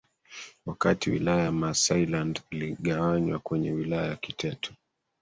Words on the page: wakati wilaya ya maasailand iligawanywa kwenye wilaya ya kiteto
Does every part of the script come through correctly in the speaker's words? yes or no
yes